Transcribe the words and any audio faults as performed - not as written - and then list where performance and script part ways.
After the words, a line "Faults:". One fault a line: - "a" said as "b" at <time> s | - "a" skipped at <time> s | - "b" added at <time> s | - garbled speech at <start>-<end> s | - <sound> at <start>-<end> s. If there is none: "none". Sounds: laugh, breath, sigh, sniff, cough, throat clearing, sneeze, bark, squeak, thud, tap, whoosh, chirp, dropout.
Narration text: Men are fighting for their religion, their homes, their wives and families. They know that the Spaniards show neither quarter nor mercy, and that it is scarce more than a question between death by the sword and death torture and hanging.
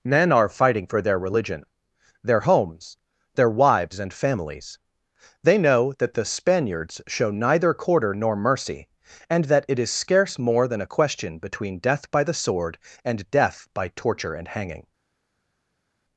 Men are fighting for their religion, their homes, their wives and families. They know that the Spaniards show neither quarter nor mercy, and that it is scarce more than a question between death by the sword and death by torture and hanging.
Faults:
- "by" added at 13.8 s